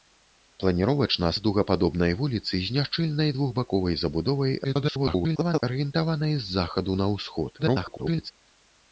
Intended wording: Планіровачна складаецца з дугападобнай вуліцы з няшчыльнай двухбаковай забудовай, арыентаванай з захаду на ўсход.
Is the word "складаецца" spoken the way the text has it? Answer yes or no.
no